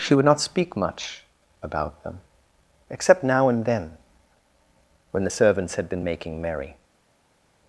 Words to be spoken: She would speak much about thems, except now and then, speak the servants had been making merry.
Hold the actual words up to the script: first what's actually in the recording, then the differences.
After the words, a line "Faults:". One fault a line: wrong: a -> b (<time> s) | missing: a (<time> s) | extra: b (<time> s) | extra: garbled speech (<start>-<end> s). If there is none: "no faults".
She would not speak much about them, except now and then, when the servants had been making merry.
Faults:
extra: not (0.2 s)
wrong: thems -> them (2.0 s)
wrong: speak -> when (5.1 s)